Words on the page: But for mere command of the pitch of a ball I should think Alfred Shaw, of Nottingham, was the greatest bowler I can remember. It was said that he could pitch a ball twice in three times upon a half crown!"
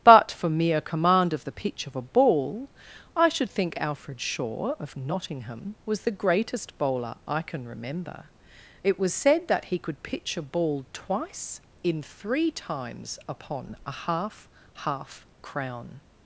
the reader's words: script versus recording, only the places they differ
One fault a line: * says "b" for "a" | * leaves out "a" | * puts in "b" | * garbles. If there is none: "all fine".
* puts in "half"